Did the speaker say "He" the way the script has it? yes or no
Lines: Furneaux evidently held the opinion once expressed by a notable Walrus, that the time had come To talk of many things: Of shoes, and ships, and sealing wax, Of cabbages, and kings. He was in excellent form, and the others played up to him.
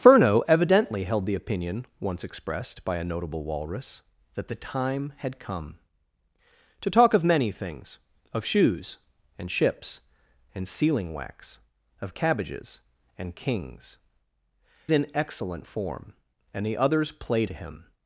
no